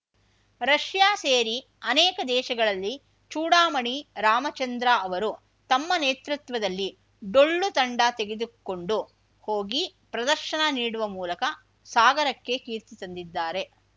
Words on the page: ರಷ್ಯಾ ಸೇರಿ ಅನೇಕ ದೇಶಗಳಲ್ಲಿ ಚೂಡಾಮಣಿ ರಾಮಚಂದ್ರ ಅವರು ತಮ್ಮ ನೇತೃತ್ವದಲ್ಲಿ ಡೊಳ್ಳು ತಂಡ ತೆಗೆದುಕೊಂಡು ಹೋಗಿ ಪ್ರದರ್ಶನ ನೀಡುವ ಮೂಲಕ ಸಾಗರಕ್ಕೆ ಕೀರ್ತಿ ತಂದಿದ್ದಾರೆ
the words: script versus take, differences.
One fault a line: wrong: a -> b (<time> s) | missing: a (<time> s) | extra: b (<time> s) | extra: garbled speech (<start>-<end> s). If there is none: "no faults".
no faults